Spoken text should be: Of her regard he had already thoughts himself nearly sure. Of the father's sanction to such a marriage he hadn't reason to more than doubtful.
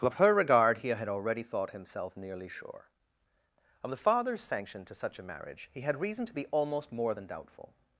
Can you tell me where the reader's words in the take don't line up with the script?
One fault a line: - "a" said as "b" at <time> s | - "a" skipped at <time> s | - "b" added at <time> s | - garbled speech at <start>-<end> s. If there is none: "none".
- "thoughts" said as "thought" at 1.4 s
- "hadn't" said as "had" at 5.8 s
- "be almost" added at 6.3 s